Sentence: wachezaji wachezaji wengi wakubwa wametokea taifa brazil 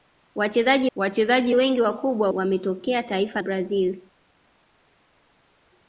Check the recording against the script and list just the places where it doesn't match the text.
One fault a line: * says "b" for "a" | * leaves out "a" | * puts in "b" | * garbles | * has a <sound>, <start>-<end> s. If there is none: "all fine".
all fine